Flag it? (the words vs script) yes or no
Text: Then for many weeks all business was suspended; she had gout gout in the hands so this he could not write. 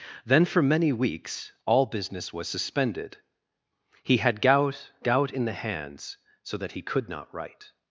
yes